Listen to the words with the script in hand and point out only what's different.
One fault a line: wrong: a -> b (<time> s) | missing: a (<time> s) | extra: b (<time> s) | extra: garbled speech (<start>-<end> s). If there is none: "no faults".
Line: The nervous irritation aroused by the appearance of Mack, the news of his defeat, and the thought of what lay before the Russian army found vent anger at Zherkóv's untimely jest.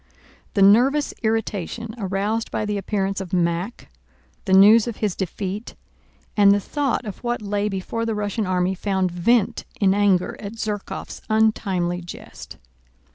extra: in (9.8 s)